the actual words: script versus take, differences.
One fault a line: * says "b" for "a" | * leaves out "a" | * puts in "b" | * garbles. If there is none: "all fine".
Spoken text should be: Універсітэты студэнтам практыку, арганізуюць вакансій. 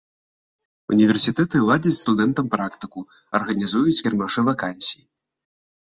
* puts in "ладзяць"
* puts in "кірмашы"